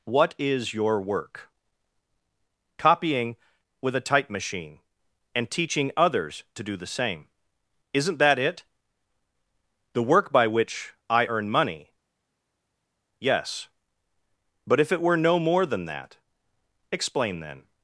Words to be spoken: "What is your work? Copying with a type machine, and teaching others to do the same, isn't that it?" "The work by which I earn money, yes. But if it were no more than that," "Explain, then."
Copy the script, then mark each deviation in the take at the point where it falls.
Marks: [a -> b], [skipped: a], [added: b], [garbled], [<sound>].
"What is your work? Copying with a type machine, and teaching others to do the same, isn't that it?" "The work by which I earn money, yes. But if it were no more than that," "Explain, then."